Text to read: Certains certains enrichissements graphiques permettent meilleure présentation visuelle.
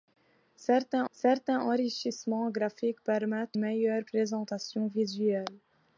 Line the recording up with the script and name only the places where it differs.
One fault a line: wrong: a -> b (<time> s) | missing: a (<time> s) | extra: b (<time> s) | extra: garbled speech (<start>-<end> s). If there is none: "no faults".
no faults